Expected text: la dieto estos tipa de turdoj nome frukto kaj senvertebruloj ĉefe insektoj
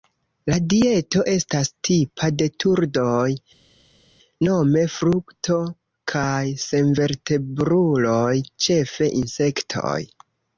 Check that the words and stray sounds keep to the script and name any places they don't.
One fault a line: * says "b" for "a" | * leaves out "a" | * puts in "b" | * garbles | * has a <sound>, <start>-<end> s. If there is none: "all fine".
* says "estas" for "estos"